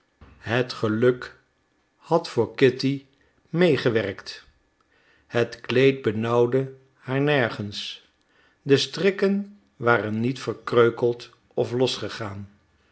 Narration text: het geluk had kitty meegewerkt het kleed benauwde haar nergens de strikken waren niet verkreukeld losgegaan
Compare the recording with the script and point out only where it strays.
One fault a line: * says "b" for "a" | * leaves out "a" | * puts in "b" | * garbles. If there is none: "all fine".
* puts in "voor"
* puts in "of"